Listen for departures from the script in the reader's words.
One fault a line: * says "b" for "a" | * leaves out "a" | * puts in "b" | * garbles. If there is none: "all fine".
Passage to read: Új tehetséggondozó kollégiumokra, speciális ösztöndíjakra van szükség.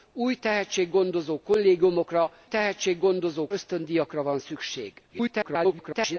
* says "tehetséggondozó" for "speciális"
* garbles